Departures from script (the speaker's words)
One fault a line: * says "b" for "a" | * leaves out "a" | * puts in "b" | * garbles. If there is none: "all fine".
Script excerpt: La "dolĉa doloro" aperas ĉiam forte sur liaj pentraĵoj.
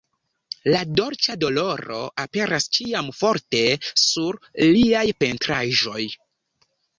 all fine